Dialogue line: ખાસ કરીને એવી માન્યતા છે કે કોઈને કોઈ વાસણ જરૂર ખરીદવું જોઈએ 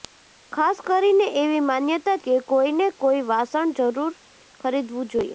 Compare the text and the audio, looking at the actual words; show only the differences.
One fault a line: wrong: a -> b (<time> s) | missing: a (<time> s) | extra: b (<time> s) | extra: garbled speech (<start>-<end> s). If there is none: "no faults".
missing: છે (2.2 s)